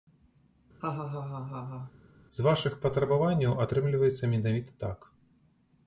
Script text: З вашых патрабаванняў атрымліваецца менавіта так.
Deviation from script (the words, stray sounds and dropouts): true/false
true